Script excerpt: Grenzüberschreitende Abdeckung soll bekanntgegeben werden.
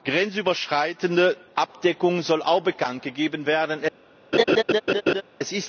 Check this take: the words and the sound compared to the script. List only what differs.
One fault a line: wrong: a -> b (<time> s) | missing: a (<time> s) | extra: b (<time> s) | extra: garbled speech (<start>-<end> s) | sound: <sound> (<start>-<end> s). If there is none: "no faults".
extra: auch (2.4 s)
sound: laugh (4.3-5.2 s)